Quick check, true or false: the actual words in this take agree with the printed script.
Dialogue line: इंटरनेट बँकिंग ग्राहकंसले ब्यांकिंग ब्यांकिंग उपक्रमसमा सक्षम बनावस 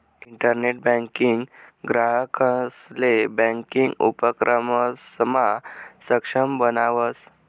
false